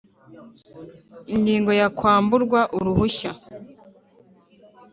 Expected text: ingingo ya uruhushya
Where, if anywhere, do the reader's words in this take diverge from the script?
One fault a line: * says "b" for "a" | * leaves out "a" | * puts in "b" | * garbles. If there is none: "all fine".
* puts in "kwamburwa"